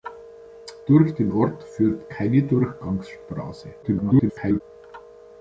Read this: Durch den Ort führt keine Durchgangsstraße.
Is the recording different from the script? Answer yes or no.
yes